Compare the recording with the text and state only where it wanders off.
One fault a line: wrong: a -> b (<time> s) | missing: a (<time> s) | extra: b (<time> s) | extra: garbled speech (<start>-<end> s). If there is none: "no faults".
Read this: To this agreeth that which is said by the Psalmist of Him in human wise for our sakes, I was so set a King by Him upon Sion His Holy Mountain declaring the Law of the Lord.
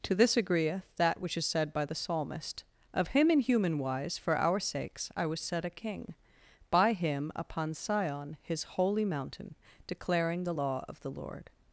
missing: so (5.4 s)